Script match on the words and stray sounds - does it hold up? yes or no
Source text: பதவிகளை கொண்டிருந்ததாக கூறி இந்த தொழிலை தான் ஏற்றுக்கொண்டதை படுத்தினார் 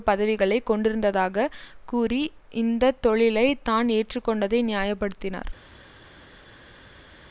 no